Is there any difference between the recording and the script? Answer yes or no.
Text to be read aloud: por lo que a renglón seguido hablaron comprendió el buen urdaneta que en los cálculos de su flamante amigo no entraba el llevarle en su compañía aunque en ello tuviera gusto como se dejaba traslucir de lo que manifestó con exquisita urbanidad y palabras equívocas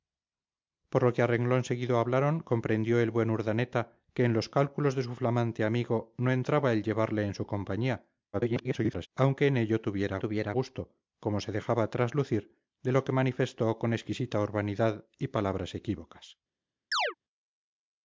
yes